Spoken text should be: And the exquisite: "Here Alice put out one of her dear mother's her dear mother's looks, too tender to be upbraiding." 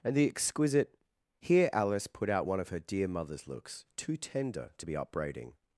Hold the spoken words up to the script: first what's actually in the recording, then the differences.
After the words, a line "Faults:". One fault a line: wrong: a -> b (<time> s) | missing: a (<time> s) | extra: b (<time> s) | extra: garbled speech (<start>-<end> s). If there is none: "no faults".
And the exquisite: "Here Alice put out one of her dear mother's looks, too tender to be upbraiding."
Faults:
missing: her dear mother's (3.5 s)